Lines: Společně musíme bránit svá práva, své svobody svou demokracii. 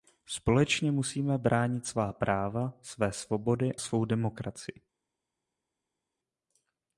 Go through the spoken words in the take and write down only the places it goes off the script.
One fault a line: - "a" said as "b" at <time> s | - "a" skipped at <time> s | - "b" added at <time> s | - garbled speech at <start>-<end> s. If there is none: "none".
none